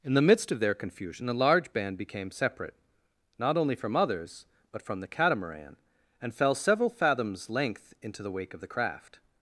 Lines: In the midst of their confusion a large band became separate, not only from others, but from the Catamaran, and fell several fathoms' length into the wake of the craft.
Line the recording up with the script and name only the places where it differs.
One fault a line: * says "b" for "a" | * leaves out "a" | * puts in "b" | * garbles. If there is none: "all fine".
all fine